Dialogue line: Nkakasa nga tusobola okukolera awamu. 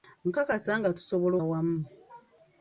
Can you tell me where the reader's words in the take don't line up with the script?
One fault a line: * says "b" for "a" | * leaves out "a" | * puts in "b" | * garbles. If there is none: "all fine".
* leaves out "okukolera"